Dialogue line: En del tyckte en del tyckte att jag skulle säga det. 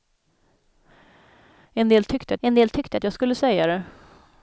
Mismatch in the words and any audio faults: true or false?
false